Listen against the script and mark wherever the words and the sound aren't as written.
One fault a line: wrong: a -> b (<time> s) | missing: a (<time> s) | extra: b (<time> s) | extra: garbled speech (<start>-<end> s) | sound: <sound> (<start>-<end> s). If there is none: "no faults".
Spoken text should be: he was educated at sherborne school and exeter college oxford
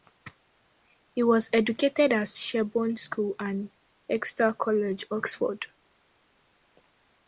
no faults